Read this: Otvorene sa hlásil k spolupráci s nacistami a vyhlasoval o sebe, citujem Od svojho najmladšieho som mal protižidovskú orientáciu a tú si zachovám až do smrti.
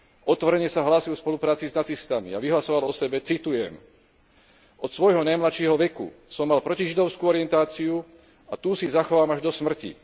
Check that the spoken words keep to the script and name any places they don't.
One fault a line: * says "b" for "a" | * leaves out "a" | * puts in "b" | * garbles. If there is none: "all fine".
* puts in "veku"